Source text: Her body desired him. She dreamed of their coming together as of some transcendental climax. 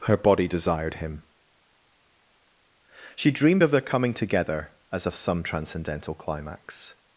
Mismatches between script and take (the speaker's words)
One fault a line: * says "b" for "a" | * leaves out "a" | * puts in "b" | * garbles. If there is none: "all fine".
all fine